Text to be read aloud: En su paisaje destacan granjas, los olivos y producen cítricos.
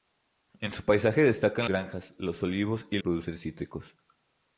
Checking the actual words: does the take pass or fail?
pass